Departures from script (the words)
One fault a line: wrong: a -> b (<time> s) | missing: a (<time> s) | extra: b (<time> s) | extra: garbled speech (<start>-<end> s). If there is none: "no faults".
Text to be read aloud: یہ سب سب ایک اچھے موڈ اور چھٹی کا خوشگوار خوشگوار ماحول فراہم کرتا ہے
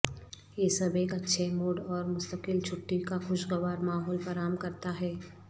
missing: سب (0.9 s)
extra: مستقل (2.1 s)
missing: خوشگوار (3.8 s)